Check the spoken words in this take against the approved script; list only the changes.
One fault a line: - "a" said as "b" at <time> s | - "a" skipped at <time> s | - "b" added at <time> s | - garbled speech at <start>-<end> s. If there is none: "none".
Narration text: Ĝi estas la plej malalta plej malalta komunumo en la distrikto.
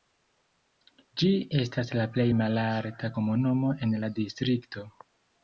- "plej malalta" skipped at 3.1 s